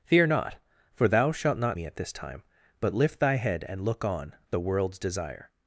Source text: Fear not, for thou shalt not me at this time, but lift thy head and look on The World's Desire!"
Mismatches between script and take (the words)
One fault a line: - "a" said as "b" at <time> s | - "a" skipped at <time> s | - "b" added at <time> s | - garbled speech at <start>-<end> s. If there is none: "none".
none